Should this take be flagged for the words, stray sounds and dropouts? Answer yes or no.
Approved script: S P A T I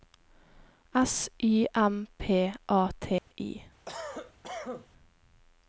yes